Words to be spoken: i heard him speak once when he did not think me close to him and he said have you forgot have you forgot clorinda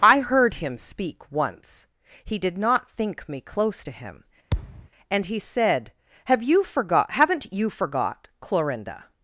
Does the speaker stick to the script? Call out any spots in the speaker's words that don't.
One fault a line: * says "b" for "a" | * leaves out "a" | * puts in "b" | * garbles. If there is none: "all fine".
* leaves out "when"
* says "haven't" for "have"